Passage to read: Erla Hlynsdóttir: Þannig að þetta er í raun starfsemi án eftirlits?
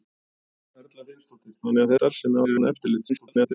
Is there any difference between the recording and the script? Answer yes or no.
yes